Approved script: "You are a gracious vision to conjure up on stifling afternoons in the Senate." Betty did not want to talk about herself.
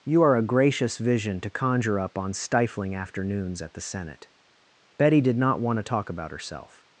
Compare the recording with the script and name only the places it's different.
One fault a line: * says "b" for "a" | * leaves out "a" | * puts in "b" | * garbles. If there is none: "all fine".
* says "at" for "in"